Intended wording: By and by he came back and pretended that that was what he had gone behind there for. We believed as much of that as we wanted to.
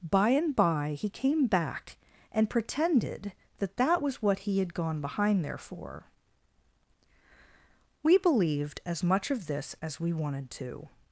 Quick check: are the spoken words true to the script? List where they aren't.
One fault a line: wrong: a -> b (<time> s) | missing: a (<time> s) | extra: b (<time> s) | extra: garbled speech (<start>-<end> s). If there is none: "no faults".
wrong: that -> this (9.5 s)